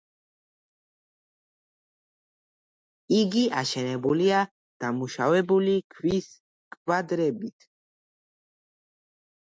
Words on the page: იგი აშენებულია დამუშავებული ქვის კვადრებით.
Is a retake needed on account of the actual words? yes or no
no